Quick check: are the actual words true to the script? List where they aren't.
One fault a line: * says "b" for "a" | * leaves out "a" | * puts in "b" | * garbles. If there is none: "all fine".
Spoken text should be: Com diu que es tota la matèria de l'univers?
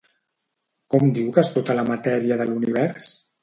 all fine